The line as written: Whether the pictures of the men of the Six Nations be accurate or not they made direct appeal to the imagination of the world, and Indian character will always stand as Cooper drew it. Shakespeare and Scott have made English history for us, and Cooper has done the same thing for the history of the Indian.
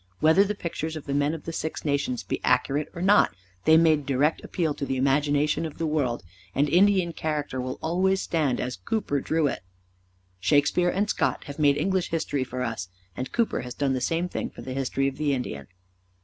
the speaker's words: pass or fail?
pass